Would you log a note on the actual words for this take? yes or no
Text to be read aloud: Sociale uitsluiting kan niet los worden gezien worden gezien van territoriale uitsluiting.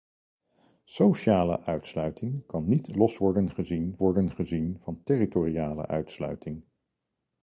no